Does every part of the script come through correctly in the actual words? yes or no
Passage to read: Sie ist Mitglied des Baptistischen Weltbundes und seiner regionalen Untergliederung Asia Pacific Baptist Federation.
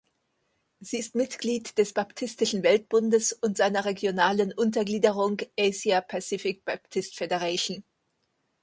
yes